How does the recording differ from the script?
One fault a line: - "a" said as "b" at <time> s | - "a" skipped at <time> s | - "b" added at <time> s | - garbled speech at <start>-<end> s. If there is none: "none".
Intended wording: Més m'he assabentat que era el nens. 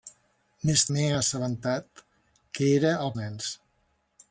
none